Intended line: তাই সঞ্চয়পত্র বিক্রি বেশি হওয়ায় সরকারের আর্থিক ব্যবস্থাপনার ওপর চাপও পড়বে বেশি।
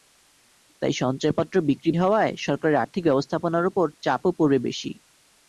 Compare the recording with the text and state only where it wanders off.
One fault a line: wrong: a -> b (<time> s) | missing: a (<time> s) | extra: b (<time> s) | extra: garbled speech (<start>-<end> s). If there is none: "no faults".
missing: বেশি (1.9 s)